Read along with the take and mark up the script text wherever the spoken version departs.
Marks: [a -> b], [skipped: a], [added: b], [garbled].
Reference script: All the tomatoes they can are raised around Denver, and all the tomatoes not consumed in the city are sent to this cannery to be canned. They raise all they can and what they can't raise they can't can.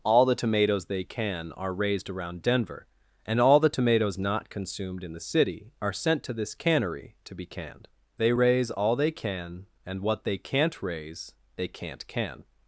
All the tomatoes they can are raised around Denver, and all the tomatoes not consumed in the city are sent to this cannery to be canned. They raise all they can and what they can't raise they can't can.